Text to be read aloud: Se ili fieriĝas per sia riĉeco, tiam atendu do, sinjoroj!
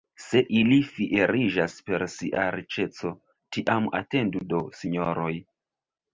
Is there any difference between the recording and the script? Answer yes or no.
no